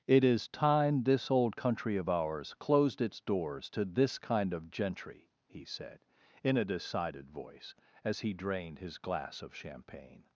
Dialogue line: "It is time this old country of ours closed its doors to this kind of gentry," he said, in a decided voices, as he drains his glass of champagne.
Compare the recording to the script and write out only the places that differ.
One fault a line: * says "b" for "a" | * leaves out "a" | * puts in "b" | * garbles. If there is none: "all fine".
* says "voice" for "voices"
* says "drained" for "drains"